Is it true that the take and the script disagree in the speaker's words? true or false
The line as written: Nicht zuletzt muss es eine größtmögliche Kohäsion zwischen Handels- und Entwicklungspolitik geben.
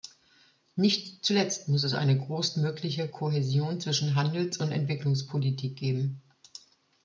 false